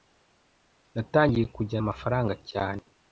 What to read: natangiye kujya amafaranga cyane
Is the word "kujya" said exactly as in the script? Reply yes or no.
yes